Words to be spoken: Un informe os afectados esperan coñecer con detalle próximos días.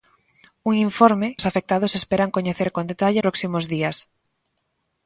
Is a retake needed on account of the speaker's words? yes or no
no